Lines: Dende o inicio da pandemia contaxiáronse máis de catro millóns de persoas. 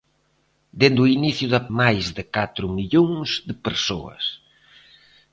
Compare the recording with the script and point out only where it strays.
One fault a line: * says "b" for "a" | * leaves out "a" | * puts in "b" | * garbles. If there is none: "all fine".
* leaves out "pandemia contaxiáronse"